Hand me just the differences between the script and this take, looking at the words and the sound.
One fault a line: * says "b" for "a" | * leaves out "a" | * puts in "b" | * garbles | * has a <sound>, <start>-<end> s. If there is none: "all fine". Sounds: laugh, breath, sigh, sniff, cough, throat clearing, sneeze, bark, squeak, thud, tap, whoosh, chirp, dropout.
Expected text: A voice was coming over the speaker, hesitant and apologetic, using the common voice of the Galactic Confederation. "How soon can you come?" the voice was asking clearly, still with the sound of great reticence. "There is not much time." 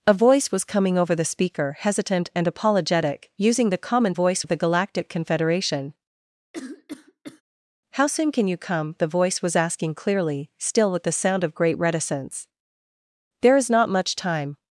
* has a cough, 6.5-7.4 s